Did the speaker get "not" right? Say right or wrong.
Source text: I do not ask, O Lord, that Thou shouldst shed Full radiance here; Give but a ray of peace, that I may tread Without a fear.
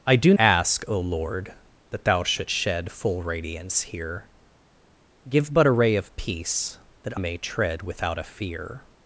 wrong